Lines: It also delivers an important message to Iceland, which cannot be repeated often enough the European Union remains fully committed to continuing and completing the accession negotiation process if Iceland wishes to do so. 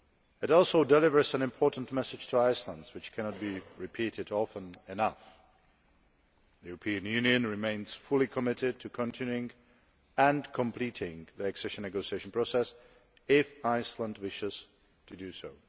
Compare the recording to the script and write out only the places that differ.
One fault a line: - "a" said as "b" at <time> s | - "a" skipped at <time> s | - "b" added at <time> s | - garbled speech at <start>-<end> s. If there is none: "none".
none